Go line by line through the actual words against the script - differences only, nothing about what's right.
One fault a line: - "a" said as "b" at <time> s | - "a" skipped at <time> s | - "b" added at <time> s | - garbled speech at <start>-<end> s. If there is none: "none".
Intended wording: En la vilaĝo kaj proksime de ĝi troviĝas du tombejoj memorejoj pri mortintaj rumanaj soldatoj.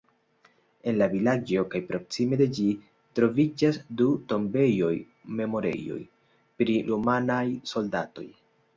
- "mortintaj" skipped at 6.8 s